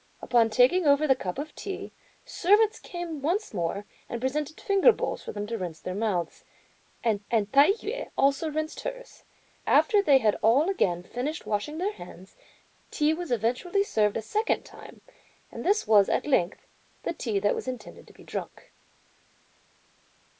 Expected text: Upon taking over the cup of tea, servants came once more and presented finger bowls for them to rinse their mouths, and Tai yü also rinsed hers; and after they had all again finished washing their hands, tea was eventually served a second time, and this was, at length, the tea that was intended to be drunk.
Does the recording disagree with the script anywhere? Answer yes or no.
yes